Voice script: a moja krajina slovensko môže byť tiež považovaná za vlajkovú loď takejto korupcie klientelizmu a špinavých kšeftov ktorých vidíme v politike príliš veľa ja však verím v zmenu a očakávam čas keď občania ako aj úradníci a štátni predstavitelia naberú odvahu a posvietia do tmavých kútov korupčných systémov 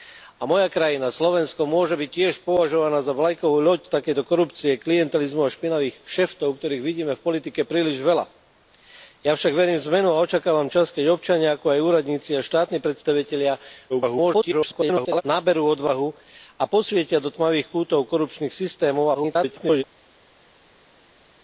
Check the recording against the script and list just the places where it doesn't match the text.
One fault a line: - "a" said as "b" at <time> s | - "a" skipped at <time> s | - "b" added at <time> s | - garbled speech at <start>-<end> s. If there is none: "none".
- garbled speech at 13.9-15.2 s
- garbled speech at 19.1-19.8 s